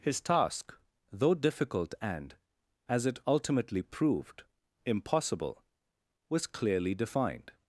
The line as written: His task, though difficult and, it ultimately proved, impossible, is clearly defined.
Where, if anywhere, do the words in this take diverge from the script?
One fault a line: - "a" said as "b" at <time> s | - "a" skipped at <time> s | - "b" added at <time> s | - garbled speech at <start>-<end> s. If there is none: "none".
- "as" added at 2.9 s
- "is" said as "was" at 6.3 s